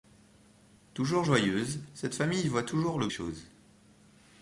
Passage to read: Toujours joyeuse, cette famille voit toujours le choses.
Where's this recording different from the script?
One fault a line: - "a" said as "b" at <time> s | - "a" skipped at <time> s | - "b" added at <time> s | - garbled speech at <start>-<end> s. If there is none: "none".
none